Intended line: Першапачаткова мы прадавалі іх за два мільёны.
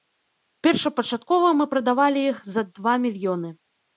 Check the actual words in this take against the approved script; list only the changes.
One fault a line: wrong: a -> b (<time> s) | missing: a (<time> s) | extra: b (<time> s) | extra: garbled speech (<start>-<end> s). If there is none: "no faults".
no faults